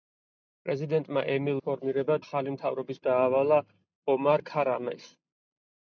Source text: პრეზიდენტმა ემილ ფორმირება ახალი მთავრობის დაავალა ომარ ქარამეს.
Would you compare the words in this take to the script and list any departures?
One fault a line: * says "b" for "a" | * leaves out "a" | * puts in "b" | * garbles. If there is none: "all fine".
all fine